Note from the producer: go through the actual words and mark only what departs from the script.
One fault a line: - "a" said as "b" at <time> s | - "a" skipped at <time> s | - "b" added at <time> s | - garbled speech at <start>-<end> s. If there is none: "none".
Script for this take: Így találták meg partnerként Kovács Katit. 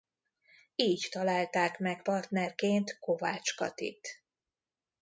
none